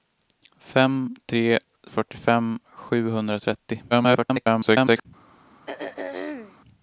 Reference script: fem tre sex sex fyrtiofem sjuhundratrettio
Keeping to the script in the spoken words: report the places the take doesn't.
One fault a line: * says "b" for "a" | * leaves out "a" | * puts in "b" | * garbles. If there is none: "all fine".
* leaves out "sex sex"
* garbles